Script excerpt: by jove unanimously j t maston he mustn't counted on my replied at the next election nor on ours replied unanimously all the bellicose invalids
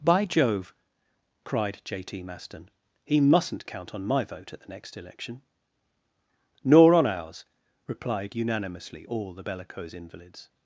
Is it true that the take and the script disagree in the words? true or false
true